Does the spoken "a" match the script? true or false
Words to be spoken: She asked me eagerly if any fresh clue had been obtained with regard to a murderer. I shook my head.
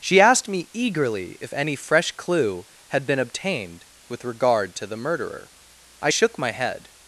false